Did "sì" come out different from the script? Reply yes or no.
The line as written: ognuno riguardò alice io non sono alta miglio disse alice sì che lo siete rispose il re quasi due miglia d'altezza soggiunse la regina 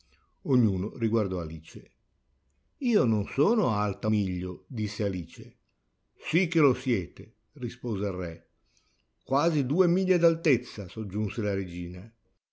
no